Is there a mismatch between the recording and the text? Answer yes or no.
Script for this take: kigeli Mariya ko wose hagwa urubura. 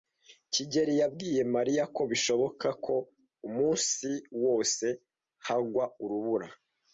yes